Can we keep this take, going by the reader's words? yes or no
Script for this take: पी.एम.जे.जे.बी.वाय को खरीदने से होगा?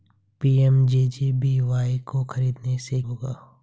yes